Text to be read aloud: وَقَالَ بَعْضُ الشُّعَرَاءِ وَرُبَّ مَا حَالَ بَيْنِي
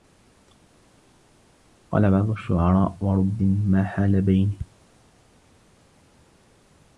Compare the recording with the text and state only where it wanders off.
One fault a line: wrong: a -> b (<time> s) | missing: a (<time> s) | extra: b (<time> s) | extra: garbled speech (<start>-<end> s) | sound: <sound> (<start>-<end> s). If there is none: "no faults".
no faults